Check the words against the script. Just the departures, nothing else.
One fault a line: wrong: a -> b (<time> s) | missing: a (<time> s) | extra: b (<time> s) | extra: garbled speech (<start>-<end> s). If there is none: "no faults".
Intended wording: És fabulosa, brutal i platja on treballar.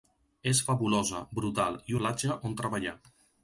no faults